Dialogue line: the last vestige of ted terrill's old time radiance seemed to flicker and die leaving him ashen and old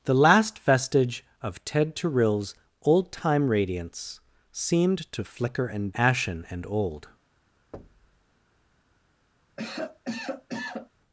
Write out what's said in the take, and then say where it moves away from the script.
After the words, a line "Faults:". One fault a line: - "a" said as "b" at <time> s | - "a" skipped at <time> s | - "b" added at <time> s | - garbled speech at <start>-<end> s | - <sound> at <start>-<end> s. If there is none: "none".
the last vestige of ted terrill's old time radiance seemed to flicker and ashen and old
Faults:
- "die leaving him" skipped at 5.9 s
- thud at 7.7-8.2 s
- cough at 9.6-10.9 s